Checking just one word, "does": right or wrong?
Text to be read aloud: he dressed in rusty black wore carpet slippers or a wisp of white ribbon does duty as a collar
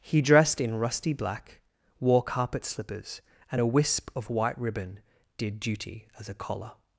wrong